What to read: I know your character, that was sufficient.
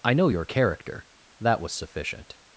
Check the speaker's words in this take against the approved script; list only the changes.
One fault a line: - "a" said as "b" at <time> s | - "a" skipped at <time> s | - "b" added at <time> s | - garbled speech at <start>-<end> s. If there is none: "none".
none